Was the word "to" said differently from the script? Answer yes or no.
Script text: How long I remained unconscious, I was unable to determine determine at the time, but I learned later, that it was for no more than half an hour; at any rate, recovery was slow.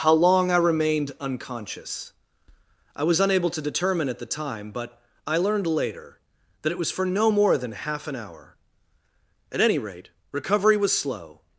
no